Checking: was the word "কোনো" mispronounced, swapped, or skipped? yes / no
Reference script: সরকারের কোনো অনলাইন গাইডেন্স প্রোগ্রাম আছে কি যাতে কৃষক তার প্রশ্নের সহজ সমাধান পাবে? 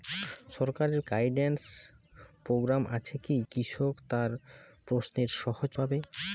yes